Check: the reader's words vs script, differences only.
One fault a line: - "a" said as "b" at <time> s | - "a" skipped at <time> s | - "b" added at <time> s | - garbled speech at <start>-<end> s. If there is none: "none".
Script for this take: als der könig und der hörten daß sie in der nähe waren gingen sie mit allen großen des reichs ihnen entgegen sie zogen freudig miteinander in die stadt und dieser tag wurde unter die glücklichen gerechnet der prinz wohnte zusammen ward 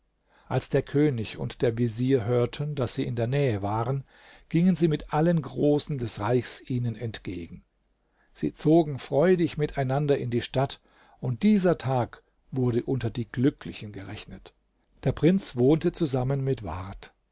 - "vezier" added at 1.8 s
- "mit" added at 16.4 s